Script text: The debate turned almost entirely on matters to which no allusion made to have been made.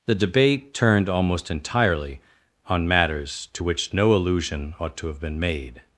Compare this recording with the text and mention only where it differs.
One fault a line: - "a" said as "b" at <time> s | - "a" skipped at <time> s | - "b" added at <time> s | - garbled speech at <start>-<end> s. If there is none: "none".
- "made" said as "ought" at 4.8 s